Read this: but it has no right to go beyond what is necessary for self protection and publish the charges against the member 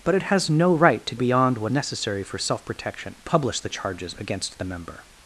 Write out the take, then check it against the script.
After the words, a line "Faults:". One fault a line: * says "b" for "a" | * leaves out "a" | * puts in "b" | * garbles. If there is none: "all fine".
but it has no right to beyond what necessary for self protection publish the charges against the member
Faults:
* leaves out "go"
* leaves out "is"
* leaves out "and"